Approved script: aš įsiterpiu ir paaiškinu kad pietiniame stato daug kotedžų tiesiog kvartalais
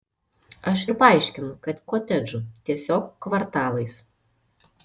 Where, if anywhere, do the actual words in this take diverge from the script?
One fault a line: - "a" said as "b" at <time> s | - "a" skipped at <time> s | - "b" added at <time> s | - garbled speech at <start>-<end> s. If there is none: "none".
- "įsiterpiu" skipped at 0.8 s
- "pietiniame stato daug" skipped at 1.8 s